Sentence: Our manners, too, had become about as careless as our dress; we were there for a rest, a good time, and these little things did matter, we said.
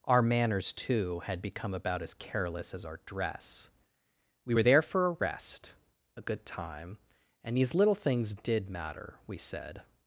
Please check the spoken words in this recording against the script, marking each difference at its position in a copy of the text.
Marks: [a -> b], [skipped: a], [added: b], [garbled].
Our manners, too, had become about as careless as our dress; we were there for a rest, a good time, and these little things did matter, we said.